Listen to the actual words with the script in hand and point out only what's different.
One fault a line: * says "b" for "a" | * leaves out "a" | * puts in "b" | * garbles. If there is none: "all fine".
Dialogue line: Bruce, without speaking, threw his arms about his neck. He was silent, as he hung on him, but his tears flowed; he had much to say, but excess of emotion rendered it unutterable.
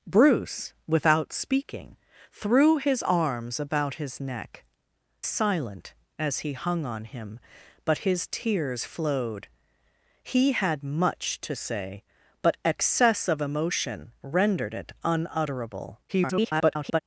* leaves out "He was"
* garbles